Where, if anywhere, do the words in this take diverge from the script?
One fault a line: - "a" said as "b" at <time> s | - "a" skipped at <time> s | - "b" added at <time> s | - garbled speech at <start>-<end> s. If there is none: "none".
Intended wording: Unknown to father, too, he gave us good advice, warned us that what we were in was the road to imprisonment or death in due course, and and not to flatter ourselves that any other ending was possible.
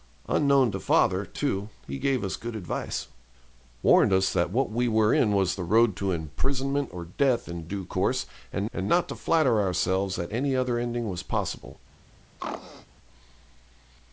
none